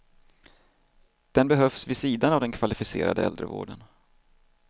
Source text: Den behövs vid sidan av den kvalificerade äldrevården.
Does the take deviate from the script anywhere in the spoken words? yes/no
no